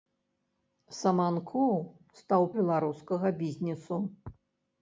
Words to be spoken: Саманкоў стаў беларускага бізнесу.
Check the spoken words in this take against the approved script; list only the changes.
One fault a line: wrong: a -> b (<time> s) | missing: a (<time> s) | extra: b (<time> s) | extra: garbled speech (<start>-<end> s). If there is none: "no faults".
no faults